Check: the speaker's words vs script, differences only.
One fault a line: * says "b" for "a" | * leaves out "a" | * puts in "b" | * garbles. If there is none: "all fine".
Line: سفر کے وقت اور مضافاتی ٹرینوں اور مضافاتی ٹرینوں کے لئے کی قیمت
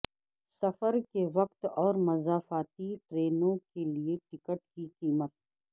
* leaves out "اور مضافاتی ٹرینوں"
* puts in "ٹکٹ"